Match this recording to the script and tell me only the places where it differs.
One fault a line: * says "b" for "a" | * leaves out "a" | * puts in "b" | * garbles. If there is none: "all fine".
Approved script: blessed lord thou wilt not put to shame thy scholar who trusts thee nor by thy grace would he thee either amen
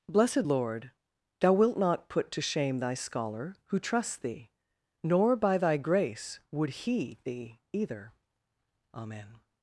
all fine